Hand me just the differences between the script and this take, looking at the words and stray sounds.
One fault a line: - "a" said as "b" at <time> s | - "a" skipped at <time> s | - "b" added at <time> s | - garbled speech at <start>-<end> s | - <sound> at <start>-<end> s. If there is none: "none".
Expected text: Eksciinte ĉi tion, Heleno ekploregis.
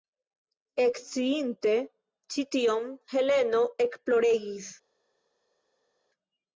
none